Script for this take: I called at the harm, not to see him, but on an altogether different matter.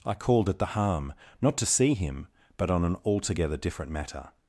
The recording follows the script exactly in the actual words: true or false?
true